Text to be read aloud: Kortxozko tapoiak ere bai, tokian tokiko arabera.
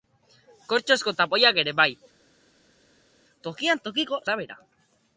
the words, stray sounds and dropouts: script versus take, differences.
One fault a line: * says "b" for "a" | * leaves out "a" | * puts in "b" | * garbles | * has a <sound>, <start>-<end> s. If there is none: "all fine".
all fine